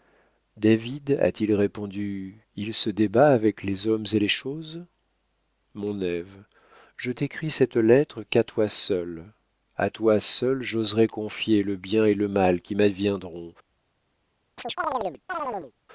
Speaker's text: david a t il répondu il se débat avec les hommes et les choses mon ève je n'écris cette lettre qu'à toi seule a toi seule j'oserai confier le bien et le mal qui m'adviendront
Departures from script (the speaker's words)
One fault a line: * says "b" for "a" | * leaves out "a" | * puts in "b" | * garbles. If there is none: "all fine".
all fine